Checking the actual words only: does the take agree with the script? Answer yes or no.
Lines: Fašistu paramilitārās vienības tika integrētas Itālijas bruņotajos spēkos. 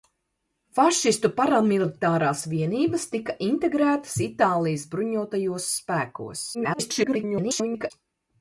no